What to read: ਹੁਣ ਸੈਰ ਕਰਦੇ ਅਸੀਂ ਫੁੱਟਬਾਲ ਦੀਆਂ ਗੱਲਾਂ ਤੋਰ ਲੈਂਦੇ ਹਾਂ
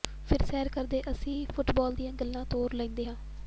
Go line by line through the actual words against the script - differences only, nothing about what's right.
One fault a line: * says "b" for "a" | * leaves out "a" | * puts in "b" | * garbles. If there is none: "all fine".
* says "ਫਿਰ" for "ਹੁਣ"